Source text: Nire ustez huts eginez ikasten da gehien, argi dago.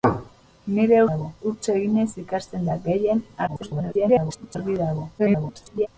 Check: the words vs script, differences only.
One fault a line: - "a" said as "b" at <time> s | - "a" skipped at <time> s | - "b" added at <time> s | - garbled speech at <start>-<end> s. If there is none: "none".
- "ustez" said as "dago" at 1.1 s
- garbled speech at 3.5-4.6 s
- garbled speech at 5.2-5.9 s